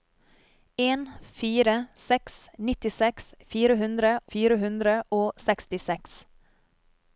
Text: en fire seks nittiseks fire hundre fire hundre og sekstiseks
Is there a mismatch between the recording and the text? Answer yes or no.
no